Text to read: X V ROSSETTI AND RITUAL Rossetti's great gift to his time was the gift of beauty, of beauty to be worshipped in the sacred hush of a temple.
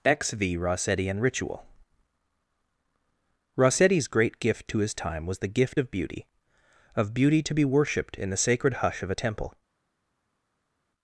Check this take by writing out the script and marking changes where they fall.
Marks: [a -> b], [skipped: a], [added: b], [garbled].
X V ROSSETTI AND RITUAL Rossetti's great gift to his time was the gift of beauty, of beauty to be worshipped in the sacred hush of a temple.